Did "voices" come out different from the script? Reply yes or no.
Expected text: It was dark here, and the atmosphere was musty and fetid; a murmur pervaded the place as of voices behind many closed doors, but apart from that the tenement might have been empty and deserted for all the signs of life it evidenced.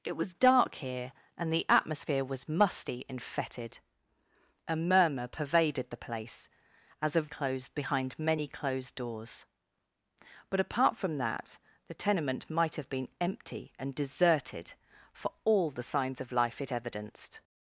yes